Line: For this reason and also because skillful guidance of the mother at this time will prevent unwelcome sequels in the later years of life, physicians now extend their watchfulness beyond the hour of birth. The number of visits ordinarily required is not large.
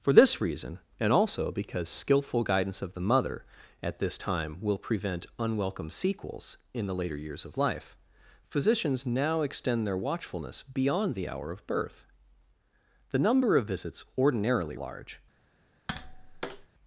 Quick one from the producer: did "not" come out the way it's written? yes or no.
no